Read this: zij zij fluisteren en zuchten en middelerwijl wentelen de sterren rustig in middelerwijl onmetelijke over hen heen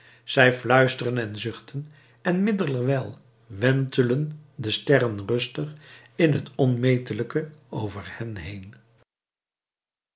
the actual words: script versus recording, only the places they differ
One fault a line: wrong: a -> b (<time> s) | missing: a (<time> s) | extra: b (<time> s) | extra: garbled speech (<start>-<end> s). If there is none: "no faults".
missing: zij (0.5 s)
wrong: middelerwijl -> het (6.3 s)